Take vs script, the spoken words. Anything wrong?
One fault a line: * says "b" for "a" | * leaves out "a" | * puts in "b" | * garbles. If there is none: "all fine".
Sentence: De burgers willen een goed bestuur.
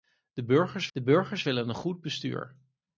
* puts in "de burgers"